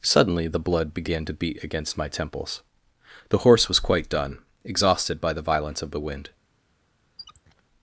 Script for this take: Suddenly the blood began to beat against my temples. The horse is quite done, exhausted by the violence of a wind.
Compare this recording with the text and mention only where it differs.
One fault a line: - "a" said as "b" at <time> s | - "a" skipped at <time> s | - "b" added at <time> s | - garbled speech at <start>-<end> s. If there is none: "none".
- "is" said as "was" at 3.7 s
- "a" said as "the" at 5.9 s